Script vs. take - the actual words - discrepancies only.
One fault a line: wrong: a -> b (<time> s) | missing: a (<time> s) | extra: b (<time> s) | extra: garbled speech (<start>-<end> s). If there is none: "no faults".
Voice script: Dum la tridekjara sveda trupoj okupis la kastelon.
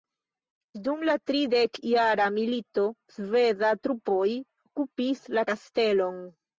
extra: milito (2.4 s)